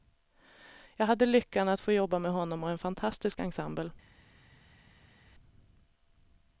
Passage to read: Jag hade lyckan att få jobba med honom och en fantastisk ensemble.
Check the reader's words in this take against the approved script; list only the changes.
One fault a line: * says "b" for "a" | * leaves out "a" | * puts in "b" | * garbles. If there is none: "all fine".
all fine